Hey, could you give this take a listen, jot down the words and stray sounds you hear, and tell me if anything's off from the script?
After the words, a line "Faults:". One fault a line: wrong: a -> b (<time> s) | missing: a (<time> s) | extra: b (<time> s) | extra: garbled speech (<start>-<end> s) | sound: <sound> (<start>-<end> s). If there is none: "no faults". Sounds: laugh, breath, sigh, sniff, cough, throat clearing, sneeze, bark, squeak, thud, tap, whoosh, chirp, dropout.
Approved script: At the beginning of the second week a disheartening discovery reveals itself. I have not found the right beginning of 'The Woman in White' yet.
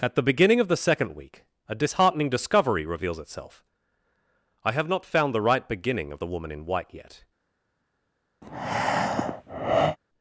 At the beginning of the second week a disheartening discovery reveals itself. I have not found the right beginning of 'The Woman in White' yet.
Faults:
sound: breath (8.4-10.0 s)